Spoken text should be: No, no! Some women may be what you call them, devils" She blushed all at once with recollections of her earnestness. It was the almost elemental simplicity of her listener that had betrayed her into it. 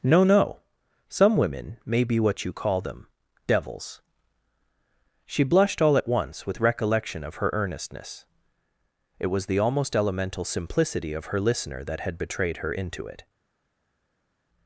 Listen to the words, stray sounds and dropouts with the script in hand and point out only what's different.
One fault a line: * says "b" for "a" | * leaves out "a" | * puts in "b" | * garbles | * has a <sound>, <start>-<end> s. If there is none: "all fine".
* says "recollection" for "recollections"